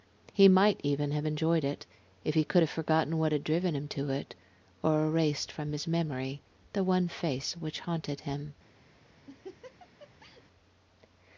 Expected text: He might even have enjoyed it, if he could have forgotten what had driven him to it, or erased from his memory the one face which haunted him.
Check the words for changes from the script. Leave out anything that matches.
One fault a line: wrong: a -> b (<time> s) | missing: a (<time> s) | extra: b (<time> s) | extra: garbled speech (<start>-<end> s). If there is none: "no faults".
no faults